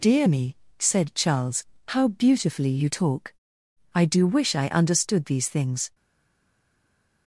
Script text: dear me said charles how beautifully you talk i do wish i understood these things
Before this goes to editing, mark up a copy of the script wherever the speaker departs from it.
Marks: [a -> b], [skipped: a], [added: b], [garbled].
dear me said charles how beautifully you talk i do wish i understood these things